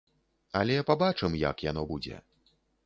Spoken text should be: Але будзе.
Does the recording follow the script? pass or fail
fail